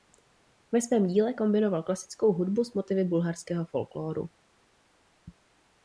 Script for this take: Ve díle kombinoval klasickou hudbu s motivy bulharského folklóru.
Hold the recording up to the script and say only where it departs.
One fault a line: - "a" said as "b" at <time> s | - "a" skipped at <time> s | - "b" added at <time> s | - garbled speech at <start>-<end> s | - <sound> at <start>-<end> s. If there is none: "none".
- "svém" added at 0.8 s